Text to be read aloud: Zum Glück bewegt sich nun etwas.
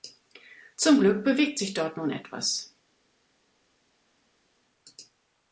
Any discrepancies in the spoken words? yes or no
yes